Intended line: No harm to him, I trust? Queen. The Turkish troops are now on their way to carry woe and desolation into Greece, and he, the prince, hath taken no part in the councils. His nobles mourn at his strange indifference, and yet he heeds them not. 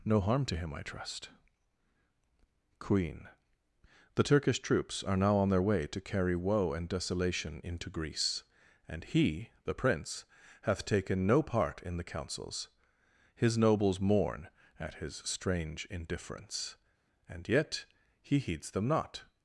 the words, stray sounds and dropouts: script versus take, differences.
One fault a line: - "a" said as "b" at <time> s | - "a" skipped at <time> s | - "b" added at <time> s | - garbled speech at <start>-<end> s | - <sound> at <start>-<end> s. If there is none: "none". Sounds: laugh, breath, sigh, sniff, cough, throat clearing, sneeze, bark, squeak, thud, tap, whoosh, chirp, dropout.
none